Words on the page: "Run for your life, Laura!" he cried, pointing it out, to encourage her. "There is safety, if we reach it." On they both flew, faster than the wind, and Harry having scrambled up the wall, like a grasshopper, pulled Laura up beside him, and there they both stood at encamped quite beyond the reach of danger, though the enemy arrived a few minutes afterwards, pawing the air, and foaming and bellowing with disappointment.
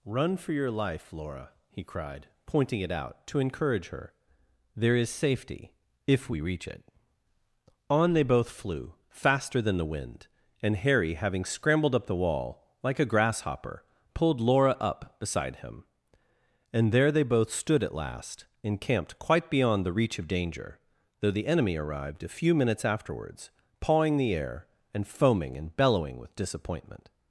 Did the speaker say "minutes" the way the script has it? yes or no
yes